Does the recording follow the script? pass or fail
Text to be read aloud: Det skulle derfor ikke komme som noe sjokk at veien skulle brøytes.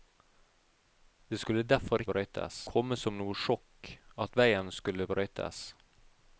fail